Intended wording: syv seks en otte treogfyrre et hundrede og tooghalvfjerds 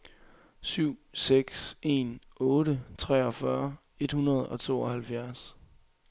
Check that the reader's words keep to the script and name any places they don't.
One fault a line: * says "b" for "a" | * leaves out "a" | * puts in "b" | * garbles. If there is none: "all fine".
all fine